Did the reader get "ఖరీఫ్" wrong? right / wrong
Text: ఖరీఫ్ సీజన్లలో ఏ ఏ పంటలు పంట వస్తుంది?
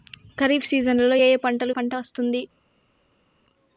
right